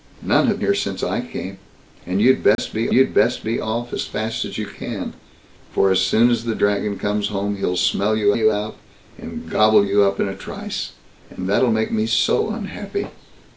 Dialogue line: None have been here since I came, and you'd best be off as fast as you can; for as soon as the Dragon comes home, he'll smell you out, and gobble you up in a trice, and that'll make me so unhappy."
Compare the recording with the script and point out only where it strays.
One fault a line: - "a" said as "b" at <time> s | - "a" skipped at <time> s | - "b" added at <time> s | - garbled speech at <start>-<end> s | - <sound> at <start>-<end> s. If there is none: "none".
- "been" skipped at 0.6 s
- dropout at 2.5-2.6 s
- "you'd best be" added at 2.9 s
- "you" added at 8.3 s